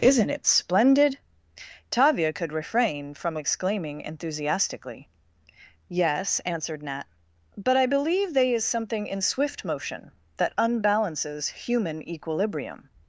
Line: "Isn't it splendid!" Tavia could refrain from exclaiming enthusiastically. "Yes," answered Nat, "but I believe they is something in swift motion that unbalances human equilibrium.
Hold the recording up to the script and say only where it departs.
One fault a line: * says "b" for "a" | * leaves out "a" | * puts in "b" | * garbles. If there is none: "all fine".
all fine